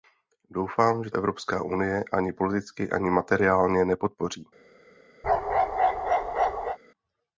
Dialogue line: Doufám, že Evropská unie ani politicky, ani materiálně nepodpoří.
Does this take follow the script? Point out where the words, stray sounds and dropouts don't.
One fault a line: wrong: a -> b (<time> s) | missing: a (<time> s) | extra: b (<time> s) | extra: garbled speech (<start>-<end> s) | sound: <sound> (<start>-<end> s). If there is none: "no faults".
sound: bark (5.2-6.8 s)